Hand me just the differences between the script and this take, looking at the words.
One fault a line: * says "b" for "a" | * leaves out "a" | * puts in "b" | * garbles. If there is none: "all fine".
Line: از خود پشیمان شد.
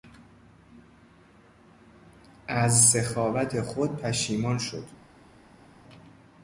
* puts in "سخاوت"